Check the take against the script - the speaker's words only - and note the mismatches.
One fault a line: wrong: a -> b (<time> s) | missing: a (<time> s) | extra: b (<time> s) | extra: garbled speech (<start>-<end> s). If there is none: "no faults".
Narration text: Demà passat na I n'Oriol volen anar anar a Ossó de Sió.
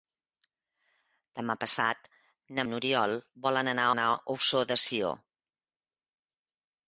no faults